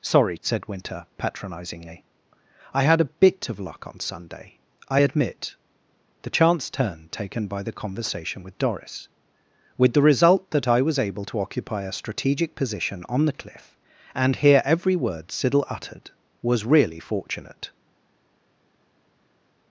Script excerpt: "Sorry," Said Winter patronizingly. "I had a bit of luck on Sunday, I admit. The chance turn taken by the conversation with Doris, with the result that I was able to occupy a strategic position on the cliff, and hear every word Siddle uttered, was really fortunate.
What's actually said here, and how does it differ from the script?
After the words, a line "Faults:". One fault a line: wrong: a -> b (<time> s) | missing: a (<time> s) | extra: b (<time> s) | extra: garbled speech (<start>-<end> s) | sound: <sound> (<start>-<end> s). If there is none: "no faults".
"Sorry," Said Winter patronizingly. "I had a bit of luck on Sunday, I admit. The chance turn taken by the conversation with Doris, with the result that I was able to occupy a strategic position on the cliff, and hear every word Siddle uttered, was really fortunate.
Faults:
no faults